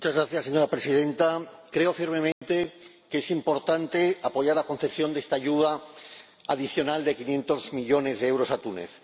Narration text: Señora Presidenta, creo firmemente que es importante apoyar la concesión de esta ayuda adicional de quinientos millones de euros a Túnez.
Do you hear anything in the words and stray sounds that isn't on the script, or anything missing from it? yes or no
yes